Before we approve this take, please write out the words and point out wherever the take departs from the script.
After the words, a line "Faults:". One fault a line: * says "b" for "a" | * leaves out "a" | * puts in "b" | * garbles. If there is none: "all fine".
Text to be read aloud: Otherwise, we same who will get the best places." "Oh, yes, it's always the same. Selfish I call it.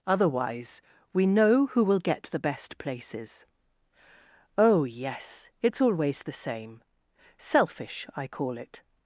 Otherwise, we know who will get the best places." "Oh, yes, it's always the same. Selfish I call it.
Faults:
* says "know" for "same"